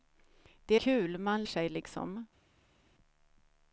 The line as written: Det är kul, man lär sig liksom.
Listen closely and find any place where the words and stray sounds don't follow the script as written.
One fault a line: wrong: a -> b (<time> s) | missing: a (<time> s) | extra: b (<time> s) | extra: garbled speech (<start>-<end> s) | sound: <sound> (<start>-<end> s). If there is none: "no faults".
missing: är (0.8 s)
missing: lär (1.4 s)